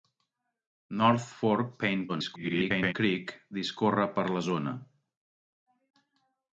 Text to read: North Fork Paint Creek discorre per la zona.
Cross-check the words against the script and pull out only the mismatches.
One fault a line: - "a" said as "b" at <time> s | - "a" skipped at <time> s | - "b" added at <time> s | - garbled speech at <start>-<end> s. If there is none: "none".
- garbled speech at 2.1-2.9 s